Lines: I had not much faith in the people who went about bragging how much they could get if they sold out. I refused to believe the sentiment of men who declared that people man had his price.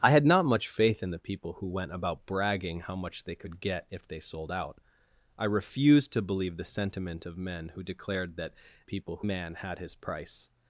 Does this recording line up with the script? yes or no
yes